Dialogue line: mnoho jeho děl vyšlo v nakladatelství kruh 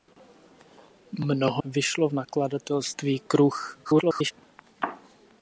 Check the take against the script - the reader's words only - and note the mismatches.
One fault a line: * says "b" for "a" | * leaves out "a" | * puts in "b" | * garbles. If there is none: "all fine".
* leaves out "jeho děl"
* garbles